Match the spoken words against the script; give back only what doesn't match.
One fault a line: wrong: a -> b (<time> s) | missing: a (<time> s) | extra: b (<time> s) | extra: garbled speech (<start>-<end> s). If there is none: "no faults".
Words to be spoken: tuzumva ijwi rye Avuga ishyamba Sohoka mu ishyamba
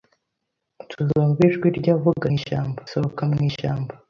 no faults